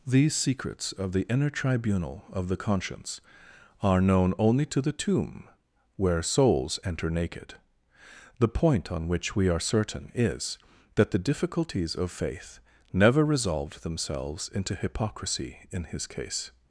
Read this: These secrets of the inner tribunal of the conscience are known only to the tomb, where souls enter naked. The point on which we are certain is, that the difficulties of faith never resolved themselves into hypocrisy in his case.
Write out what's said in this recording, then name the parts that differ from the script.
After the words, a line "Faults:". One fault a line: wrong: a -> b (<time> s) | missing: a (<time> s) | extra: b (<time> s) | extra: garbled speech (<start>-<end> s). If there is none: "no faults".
These secrets of the inner tribunal of the conscience are known only to the tomb, where souls enter naked. The point on which we are certain is, that the difficulties of faith never resolved themselves into hypocrisy in his case.
Faults:
no faults